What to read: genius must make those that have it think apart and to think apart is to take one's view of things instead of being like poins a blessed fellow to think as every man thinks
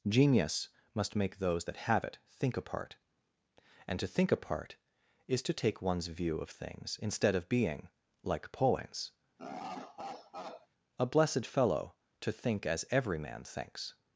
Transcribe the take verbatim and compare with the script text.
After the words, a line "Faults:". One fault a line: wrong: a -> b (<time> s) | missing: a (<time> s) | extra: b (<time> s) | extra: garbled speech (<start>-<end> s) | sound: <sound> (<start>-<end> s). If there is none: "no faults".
genius must make those that have it think apart and to think apart is to take one's view of things instead of being like poins a blessed fellow to think as every man thinks
Faults:
sound: laugh (9.4-10.7 s)